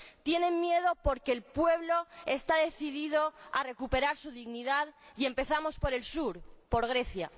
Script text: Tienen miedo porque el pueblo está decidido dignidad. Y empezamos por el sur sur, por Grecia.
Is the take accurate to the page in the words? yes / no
no